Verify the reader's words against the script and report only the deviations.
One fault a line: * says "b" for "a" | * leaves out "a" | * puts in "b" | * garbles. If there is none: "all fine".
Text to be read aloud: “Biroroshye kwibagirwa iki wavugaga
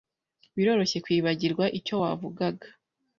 * says "icyo" for "iki"